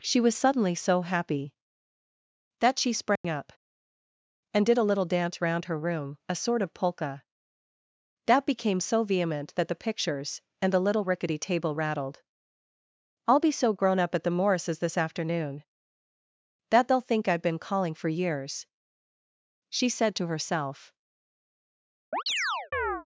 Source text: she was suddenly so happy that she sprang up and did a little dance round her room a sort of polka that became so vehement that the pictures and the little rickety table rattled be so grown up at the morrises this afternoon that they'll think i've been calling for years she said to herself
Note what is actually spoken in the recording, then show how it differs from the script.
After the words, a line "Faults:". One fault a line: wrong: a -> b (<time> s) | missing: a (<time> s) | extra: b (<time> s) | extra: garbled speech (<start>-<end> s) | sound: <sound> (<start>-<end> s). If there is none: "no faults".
she was suddenly so happy that she sprang up and did a little dance round her room a sort of polka that became so vehement that the pictures and the little rickety table rattled i'll be so grown up at the morrises this afternoon that they'll think i've been calling for years she said to herself
Faults:
sound: dropout (3.2-3.2 s)
extra: i'll (13.3 s)
sound: chirp (22.1-23.1 s)